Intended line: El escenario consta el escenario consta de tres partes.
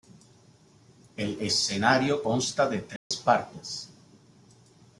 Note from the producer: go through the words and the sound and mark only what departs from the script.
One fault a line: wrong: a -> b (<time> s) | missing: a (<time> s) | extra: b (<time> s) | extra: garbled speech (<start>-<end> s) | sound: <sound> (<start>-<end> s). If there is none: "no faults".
missing: el escenario consta (2.7 s)
sound: dropout (3.0-3.1 s)